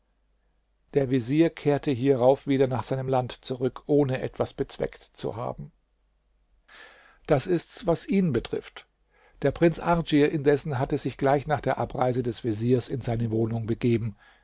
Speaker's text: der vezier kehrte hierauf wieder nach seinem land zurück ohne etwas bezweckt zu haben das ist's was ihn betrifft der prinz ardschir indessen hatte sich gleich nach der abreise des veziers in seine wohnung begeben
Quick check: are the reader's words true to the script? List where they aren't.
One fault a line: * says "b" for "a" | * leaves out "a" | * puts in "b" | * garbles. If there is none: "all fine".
all fine